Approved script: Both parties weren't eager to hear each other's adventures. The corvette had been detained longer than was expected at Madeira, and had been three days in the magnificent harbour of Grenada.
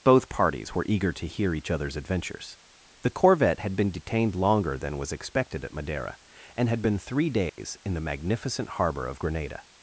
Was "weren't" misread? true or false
true